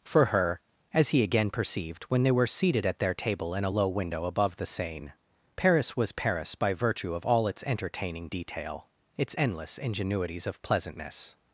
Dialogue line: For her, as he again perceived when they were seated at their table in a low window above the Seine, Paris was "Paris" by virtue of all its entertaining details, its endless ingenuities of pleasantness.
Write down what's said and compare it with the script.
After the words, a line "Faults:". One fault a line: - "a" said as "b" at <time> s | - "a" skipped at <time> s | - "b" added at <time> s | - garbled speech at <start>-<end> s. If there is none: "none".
For her, as he again perceived when they were seated at their table in a low window above the Seine, Paris was "Paris" by virtue of all its entertaining detail, its endless ingenuities of pleasantness.
Faults:
- "details" said as "detail" at 8.3 s